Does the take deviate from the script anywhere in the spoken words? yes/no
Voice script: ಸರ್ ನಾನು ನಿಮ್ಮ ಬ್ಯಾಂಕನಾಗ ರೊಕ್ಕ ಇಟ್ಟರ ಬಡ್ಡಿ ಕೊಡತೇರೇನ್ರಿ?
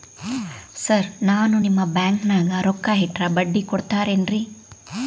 no